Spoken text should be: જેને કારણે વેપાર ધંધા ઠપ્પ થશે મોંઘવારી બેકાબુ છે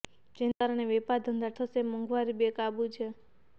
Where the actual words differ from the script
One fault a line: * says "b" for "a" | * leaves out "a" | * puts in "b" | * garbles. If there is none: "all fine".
* leaves out "ઠપ્પ"